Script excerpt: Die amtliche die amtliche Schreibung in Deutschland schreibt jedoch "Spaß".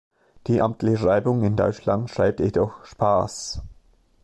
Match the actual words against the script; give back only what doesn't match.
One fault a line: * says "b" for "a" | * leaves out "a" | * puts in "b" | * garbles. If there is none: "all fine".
* leaves out "die amtliche"